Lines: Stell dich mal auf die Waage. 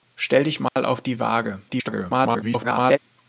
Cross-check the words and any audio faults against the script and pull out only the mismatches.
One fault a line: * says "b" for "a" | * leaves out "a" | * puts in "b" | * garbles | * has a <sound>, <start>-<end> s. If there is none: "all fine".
* has a dropout, 0.7-0.8 s
* garbles